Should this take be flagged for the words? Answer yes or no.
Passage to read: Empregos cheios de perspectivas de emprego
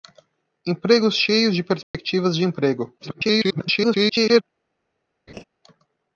yes